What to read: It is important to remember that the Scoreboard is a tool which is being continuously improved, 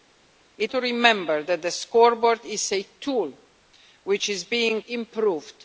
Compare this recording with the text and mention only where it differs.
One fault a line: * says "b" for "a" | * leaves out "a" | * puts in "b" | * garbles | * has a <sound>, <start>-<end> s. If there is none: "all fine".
* leaves out "is important"
* leaves out "continuously"